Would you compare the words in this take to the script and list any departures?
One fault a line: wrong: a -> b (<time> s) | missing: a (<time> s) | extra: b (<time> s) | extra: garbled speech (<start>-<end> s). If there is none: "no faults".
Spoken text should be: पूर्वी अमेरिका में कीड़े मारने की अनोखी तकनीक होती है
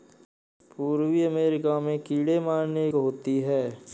missing: की अनोखी तकनीक (2.9 s)